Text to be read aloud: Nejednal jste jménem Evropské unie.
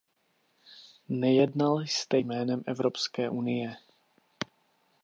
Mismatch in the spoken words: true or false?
false